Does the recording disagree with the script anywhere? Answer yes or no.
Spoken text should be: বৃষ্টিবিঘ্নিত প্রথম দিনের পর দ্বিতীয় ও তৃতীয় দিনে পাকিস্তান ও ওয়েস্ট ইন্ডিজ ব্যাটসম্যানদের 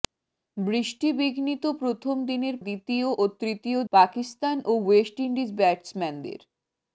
yes